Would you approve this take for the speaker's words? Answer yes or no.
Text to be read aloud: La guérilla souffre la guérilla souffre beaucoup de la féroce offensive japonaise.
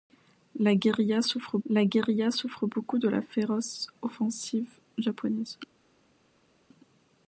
yes